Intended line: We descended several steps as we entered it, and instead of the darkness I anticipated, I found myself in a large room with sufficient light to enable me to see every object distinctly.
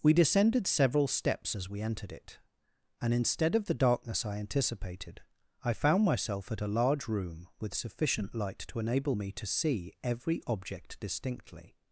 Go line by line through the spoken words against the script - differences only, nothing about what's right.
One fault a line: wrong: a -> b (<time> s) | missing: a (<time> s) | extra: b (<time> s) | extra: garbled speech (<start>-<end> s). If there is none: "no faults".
wrong: in -> at (6.5 s)